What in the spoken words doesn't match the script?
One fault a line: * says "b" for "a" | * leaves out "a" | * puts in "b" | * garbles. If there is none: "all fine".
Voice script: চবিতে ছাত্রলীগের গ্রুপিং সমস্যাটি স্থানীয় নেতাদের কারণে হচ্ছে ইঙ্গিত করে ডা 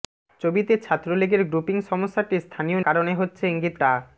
* leaves out "নেতাদের"
* leaves out "করে"